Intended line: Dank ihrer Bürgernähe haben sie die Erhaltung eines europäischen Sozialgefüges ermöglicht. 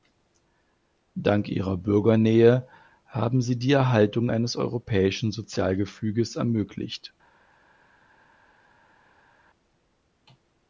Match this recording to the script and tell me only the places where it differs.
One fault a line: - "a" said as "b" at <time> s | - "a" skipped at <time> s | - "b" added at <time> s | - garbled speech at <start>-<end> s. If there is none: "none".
none